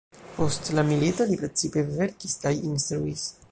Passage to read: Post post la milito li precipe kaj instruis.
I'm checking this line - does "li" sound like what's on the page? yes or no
yes